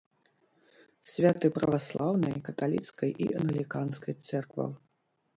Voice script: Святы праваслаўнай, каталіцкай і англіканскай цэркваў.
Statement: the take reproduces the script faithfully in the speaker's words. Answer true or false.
true